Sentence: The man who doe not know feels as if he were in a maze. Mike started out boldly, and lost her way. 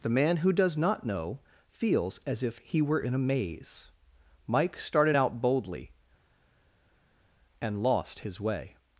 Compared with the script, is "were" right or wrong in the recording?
right